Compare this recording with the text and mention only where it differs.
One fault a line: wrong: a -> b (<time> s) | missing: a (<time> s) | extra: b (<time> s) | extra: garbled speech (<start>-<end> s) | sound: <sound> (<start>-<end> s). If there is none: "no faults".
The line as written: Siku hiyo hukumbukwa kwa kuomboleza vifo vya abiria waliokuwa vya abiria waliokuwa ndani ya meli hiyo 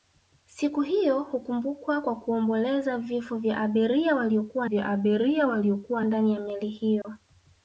sound: dropout (7.0-7.0 s)